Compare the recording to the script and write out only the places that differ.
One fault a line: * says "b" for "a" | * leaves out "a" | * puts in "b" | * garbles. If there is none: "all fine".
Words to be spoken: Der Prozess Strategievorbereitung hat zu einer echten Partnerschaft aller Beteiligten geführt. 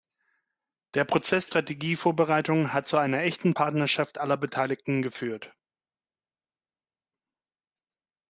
all fine